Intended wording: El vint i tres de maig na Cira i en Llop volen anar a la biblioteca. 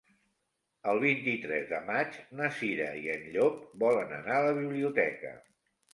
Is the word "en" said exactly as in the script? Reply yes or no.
yes